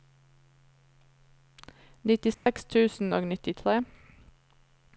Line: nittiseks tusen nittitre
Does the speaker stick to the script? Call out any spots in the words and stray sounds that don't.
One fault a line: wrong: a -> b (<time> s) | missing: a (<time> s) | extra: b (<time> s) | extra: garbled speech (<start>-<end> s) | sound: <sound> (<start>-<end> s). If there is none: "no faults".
sound: dropout (2.3-2.5 s)
extra: og (3.1 s)